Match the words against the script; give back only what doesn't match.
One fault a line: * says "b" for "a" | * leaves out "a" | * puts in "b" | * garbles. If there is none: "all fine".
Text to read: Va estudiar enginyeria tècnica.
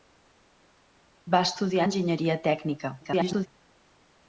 * garbles